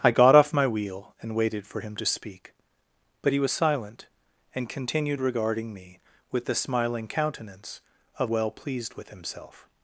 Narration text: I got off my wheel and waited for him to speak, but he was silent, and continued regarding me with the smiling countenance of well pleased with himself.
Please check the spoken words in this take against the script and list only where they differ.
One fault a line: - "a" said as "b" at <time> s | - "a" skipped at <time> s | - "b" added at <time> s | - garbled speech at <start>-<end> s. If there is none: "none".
none